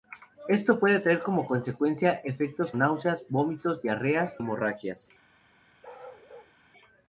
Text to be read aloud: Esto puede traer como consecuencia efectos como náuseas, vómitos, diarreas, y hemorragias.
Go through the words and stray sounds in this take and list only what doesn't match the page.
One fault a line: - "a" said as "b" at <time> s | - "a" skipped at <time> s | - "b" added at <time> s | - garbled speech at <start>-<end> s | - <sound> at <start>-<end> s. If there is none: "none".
- "como" skipped at 2.7 s
- "y" skipped at 4.4 s
- bark at 5.8-6.5 s